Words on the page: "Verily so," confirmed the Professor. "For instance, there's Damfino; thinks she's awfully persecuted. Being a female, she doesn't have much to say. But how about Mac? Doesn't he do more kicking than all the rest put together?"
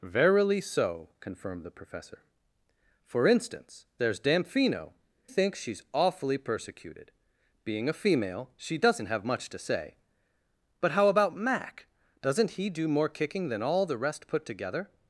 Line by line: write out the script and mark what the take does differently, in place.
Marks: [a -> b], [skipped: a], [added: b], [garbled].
"Verily so," confirmed the Professor. "For instance, there's Damfino; thinks she's awfully persecuted. Being a female, she doesn't have much to say. But how about Mac? Doesn't he do more kicking than all the rest put together?"